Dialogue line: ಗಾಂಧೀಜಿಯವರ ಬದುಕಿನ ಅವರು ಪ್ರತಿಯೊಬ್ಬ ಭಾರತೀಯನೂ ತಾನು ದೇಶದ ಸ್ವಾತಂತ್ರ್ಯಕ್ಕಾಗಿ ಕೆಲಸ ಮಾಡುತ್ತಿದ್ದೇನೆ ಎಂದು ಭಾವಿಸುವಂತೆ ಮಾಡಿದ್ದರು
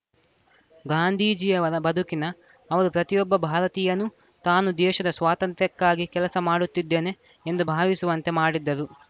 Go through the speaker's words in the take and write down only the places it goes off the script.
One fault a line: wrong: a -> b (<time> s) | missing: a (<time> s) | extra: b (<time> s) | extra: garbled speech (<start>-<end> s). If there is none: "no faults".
no faults